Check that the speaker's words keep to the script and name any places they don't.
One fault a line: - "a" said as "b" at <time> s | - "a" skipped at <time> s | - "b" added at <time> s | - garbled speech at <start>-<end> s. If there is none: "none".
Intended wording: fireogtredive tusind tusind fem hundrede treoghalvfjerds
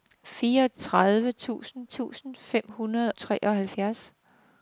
none